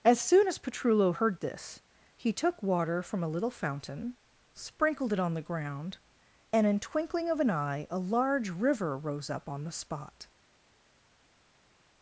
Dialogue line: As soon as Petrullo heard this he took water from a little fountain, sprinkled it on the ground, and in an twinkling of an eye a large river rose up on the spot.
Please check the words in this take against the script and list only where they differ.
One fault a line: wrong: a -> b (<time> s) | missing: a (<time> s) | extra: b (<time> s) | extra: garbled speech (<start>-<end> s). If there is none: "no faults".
missing: an (6.8 s)